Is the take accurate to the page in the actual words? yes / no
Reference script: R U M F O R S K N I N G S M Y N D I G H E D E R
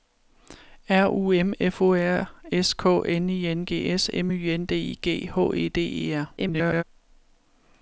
no